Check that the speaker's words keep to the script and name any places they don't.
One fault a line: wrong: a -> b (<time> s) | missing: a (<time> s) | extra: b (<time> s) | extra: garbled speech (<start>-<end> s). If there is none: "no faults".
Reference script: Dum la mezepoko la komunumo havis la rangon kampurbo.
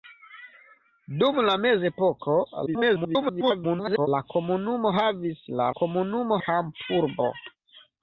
extra: garbled speech (2.7-4.1 s)
wrong: rangon -> komunumo (5.8 s)